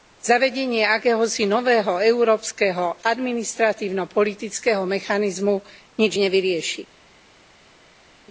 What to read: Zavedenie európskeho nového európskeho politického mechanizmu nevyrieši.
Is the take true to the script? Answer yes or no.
no